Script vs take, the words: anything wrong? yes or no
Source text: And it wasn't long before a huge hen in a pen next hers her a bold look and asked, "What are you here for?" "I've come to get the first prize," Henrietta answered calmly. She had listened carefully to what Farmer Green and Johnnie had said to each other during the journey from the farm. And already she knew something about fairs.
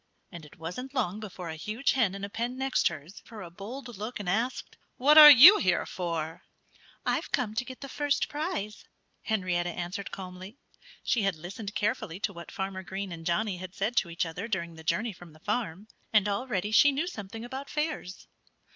no